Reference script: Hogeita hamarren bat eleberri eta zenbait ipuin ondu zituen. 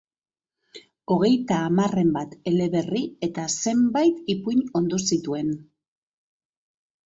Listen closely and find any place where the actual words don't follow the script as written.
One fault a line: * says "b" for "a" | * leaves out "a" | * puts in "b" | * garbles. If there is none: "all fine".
all fine